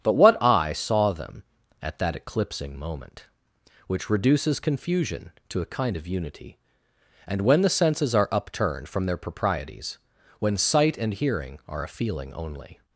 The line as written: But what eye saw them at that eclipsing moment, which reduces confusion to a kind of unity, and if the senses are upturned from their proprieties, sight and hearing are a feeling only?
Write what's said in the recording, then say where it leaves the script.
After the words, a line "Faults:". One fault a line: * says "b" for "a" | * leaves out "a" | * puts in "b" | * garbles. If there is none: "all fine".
But what eye saw them at that eclipsing moment, which reduces confusion to a kind of unity, and when the senses are upturned from their proprieties, when sight and hearing are a feeling only?
Faults:
* says "when" for "if"
* puts in "when"